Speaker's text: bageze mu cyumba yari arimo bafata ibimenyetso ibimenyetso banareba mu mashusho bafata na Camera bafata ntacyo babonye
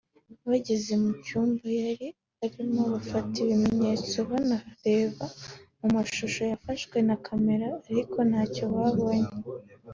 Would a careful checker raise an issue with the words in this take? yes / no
yes